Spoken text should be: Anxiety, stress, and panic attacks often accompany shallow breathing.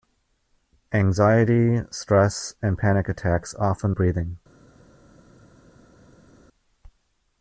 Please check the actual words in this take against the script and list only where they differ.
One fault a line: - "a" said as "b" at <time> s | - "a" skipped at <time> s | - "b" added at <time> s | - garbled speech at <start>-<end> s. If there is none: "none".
- "accompany shallow" skipped at 4.0 s